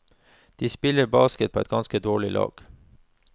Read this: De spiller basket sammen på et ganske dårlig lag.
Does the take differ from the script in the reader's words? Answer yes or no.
yes